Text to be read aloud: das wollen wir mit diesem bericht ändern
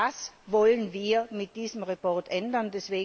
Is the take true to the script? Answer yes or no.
yes